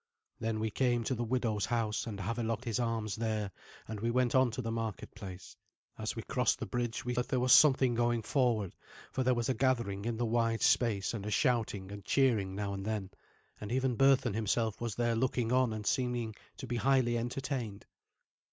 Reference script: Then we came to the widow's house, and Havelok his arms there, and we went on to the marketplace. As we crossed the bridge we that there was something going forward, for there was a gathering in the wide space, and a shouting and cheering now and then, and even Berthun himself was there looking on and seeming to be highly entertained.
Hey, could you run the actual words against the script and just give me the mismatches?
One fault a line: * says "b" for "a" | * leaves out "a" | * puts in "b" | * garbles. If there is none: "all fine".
all fine